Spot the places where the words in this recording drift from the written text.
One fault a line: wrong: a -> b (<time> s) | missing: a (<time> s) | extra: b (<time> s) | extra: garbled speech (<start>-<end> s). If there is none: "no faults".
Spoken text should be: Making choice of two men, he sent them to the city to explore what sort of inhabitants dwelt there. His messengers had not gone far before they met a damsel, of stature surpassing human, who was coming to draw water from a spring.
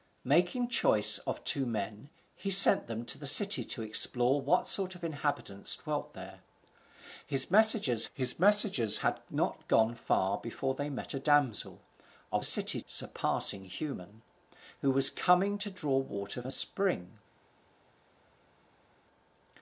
extra: his messengers (8.1 s)
wrong: stature -> city (12.4 s)
missing: from (16.4 s)